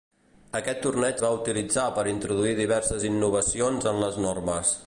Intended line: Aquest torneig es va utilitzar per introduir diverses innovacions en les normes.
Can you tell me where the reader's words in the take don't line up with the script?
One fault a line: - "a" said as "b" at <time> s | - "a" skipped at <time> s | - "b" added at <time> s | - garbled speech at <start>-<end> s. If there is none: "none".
- "es" skipped at 1.2 s